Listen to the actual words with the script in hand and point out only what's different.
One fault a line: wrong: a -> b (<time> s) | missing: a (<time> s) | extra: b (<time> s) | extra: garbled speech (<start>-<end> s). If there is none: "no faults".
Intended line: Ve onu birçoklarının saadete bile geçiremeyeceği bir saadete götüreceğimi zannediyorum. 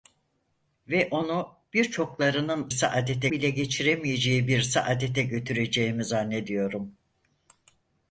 no faults